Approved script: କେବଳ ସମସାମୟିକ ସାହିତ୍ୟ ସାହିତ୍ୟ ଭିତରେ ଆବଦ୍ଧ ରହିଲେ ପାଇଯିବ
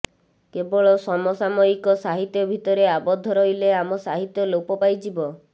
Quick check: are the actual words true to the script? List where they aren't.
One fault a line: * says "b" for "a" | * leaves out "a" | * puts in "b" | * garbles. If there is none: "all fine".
* leaves out "ସାହିତ୍ୟ"
* puts in "ଆମ ସାହିତ୍ୟ ଲୋପ"